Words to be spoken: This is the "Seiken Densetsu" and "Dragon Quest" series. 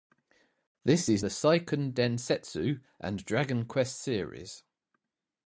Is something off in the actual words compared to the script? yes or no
no